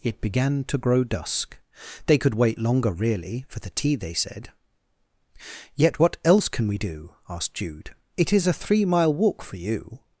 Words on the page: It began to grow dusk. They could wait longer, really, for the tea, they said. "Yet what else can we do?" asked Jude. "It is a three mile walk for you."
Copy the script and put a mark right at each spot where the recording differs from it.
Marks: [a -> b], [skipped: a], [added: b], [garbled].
It began to grow dusk. They could wait longer, really, for the tea, they said. "Yet what else can we do?" asked Jude. "It is a three mile walk for you."